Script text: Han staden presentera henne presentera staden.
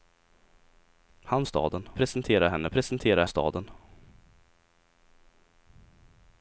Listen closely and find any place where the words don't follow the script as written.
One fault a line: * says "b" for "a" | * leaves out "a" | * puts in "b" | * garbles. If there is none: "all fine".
all fine